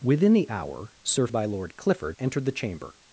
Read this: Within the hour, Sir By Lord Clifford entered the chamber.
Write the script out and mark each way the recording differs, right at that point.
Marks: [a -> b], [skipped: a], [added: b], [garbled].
Within the hour, Sir By Lord Clifford entered the chamber.